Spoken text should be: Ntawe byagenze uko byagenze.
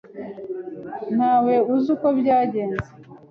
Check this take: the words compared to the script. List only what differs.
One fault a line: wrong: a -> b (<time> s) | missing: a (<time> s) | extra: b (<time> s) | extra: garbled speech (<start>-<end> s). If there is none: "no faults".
wrong: byagenze -> uzi (1.7 s)